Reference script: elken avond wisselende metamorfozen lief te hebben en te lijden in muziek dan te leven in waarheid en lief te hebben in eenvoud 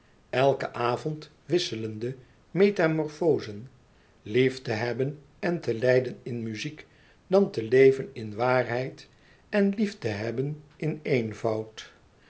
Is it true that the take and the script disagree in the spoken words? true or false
false